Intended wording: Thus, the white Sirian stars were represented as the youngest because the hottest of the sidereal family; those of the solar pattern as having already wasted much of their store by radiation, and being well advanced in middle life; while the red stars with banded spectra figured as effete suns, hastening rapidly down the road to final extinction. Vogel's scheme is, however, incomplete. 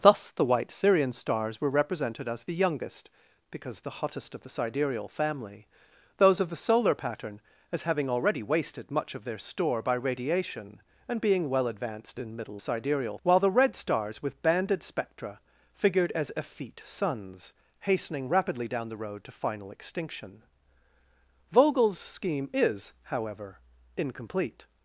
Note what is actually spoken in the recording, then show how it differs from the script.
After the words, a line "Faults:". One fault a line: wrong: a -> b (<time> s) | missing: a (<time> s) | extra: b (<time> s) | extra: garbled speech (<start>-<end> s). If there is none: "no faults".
Thus, the white Sirian stars were represented as the youngest because the hottest of the sidereal family; those of the solar pattern as having already wasted much of their store by radiation, and being well advanced in middle sidereal; while the red stars with banded spectra figured as effete suns, hastening rapidly down the road to final extinction. Vogel's scheme is, however, incomplete.
Faults:
wrong: life -> sidereal (12.6 s)